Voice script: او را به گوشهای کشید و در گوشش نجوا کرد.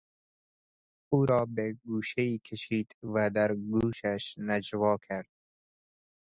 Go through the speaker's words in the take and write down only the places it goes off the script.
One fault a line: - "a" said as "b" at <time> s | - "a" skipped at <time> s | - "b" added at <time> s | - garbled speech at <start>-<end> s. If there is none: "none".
none